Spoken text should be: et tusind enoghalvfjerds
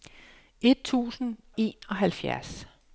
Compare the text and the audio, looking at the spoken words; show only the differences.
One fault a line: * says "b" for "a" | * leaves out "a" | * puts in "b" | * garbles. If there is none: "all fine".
all fine